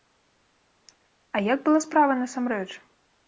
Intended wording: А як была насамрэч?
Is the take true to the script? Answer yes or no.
no